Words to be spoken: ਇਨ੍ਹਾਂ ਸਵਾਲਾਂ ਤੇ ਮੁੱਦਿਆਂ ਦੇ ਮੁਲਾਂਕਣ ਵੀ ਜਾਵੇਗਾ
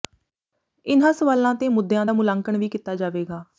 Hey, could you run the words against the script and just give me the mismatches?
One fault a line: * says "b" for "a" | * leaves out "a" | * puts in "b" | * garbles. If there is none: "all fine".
* says "ਦਾ" for "ਦੇ"
* puts in "ਕੀਤਾ"